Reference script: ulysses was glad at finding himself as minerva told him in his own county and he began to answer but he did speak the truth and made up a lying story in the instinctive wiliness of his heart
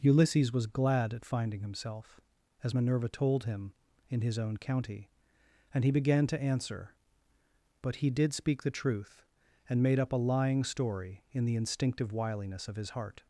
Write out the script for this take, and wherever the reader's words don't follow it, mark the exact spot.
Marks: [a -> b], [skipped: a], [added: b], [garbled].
ulysses was glad at finding himself as minerva told him in his own county and he began to answer but he did speak the truth and made up a lying story in the instinctive wiliness of his heart